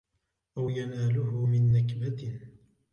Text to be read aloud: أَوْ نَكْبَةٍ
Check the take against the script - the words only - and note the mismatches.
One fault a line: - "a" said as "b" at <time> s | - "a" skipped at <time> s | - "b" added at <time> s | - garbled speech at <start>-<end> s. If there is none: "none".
- "يَنَالُهُ مِنْ" added at 0.7 s